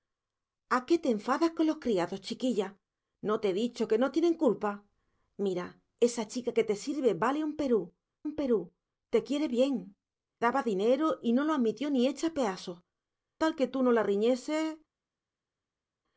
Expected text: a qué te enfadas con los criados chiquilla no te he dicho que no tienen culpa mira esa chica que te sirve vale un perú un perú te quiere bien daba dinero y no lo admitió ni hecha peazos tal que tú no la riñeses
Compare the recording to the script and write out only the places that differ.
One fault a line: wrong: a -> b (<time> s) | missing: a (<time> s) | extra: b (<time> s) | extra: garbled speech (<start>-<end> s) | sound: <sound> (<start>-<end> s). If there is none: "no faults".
no faults